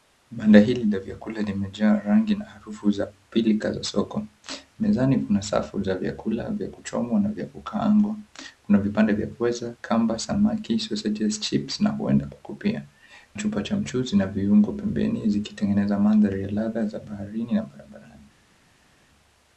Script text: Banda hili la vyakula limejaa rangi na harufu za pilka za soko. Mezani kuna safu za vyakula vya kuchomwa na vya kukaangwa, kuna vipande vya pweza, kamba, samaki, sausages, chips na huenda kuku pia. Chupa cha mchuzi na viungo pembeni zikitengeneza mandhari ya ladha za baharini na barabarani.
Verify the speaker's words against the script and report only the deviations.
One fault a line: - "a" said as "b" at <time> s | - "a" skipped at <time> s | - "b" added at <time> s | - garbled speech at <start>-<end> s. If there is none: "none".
none